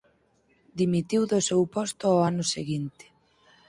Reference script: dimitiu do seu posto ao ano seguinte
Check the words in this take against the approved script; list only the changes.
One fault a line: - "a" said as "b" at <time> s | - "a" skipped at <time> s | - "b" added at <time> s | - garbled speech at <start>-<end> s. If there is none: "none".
none